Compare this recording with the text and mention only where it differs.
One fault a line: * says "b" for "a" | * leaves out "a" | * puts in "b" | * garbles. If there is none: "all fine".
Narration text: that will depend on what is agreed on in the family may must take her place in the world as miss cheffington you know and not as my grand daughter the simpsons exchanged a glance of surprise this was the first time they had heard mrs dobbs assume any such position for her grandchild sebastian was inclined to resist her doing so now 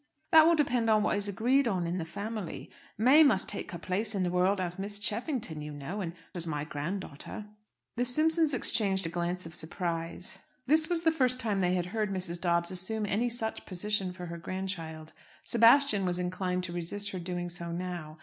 * leaves out "not"